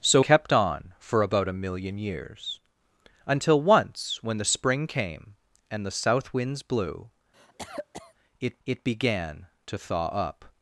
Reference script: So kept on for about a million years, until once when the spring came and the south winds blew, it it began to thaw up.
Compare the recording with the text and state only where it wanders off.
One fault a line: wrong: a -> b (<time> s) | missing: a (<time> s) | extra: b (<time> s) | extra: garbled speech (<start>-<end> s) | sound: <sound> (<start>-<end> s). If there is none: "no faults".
sound: cough (7.3-8.1 s)